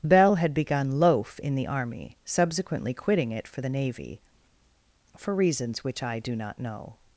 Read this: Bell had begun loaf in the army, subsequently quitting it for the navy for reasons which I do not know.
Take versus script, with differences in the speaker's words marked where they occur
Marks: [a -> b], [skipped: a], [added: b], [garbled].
Bell had begun loaf in the army, subsequently quitting it for the navy for reasons which I do not know.